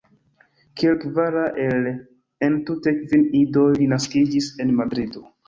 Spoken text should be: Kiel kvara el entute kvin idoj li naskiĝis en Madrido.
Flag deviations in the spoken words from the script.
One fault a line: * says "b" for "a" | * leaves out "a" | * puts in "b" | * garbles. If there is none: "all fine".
all fine